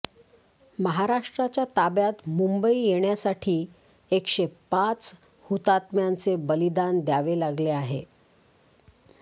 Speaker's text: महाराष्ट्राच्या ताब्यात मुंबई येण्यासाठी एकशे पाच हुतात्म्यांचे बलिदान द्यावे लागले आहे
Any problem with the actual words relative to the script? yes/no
no